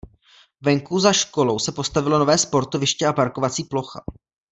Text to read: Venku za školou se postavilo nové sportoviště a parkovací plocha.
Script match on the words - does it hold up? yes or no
yes